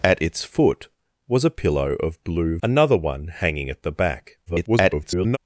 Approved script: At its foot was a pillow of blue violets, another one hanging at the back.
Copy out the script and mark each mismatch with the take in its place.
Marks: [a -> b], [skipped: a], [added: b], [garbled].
At its foot was a pillow of blue [skipped: violets,] another one hanging at the back. [garbled]